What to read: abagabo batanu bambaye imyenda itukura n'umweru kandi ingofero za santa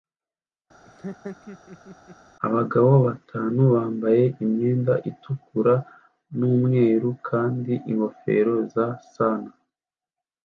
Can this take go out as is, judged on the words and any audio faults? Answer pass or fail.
fail